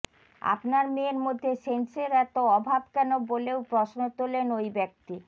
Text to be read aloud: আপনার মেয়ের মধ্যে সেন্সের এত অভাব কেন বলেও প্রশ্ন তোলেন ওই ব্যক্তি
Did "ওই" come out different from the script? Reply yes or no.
no